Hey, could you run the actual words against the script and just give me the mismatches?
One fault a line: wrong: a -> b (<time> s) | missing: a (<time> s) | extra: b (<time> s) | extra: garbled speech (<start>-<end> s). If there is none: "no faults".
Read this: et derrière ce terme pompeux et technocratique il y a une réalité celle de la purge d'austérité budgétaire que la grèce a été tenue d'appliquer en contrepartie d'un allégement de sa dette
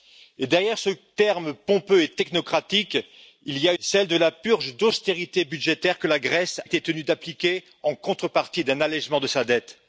missing: une réalité (3.7 s)
missing: a (6.6 s)